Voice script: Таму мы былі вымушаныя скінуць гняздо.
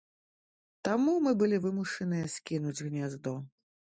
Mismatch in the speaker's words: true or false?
false